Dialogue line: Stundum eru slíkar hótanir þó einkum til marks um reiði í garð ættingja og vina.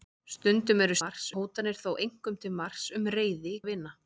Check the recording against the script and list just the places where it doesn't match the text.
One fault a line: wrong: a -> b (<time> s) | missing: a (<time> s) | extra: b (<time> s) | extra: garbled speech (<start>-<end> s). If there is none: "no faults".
wrong: slíkar -> marks (1.0 s)
missing: garð ættingja (3.6 s)